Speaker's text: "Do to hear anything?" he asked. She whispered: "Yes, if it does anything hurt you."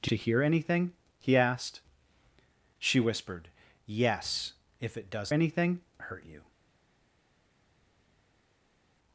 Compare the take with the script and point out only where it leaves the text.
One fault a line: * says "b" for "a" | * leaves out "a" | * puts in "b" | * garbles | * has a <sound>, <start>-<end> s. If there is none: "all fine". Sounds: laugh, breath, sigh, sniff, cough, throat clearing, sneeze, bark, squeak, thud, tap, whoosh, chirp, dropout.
all fine